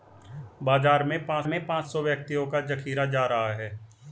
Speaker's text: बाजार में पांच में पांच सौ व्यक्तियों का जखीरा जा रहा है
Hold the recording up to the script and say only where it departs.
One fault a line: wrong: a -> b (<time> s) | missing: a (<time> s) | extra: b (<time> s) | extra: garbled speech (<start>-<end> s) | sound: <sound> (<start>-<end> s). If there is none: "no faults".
no faults